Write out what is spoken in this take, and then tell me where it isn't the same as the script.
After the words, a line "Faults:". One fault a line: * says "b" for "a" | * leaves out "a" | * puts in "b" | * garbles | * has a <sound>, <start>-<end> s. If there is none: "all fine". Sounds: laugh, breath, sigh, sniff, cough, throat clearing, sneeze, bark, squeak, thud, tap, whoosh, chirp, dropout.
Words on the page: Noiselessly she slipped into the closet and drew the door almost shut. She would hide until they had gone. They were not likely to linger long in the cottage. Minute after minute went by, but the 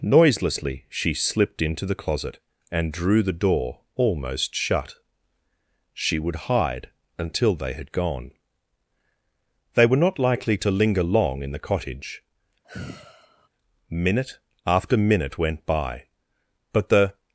Noiselessly she slipped into the closet and drew the door almost shut. She would hide until they had gone. They were not likely to linger long in the cottage. Minute after minute went by, but the
Faults:
* has a sigh, 12.6-13.5 s